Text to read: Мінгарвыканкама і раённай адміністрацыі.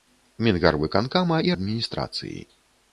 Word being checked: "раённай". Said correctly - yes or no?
no